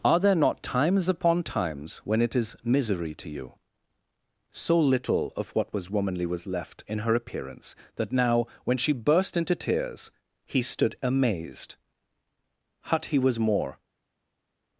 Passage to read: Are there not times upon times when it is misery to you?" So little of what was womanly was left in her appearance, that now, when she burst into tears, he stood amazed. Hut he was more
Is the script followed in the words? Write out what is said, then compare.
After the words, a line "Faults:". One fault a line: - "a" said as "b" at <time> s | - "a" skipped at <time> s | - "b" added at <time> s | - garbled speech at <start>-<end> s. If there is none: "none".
Are there not times upon times when it is misery to you?" So little of what was womanly was left in her appearance, that now, when she burst into tears, he stood amazed. Hut he was more
Faults:
none